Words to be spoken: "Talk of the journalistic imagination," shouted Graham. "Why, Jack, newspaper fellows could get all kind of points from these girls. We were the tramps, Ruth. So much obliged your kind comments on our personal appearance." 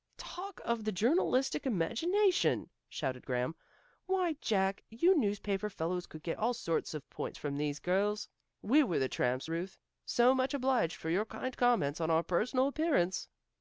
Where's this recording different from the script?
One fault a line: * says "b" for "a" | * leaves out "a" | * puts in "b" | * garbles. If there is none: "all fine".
* puts in "you"
* says "sorts" for "kind"
* puts in "for"